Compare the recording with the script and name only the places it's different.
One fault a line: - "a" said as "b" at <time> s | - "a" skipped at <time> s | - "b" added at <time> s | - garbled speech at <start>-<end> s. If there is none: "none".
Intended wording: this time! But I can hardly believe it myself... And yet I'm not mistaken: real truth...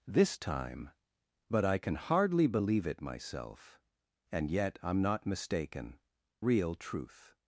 none